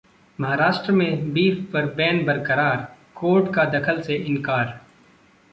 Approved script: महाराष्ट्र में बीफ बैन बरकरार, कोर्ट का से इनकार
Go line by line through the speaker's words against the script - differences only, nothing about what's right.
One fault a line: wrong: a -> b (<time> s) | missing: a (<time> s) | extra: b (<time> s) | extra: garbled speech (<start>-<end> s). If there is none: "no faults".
extra: पर (1.7 s)
extra: दखल (3.7 s)